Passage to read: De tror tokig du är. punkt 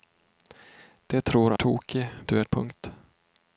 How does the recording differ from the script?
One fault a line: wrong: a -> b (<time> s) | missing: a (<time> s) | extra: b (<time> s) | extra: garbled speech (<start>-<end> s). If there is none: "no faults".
no faults